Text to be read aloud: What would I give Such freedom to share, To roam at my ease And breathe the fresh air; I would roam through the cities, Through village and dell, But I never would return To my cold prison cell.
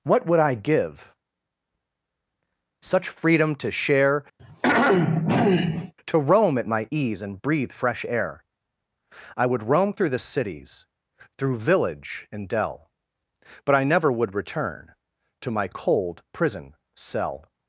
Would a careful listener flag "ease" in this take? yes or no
no